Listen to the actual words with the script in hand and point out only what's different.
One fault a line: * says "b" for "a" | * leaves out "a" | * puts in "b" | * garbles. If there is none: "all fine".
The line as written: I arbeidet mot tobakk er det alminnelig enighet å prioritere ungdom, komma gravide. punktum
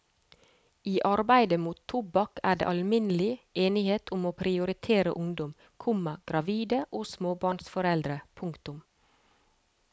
* puts in "om"
* puts in "og småbarnsforeldre"